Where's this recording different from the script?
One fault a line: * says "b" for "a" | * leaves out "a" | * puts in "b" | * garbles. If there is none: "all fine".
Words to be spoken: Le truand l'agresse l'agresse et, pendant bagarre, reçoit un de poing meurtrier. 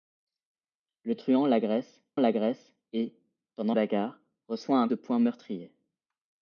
all fine